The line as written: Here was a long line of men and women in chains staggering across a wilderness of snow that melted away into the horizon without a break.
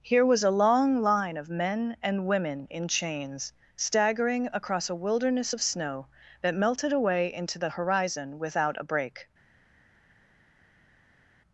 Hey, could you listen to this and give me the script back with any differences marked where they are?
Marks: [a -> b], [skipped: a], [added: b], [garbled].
Here was a long line of men and women in chains staggering across a wilderness of snow that melted away into the horizon without a break.